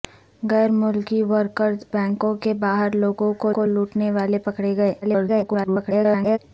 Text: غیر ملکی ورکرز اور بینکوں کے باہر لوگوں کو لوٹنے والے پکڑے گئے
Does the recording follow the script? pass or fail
fail